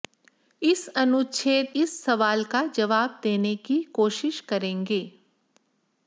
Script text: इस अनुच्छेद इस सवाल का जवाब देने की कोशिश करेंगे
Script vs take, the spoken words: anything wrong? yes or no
no